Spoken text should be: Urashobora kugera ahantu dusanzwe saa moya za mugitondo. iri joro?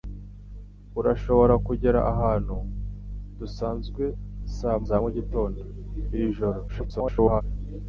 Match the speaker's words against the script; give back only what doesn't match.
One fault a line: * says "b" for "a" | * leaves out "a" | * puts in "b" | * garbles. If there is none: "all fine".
* leaves out "moya"
* garbles